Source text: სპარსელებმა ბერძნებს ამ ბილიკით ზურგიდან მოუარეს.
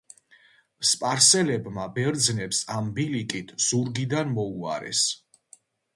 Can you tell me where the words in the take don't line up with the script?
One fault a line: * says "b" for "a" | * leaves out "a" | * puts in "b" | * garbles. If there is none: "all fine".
all fine